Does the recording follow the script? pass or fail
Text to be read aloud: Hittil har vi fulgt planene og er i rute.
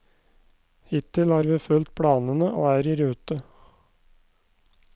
pass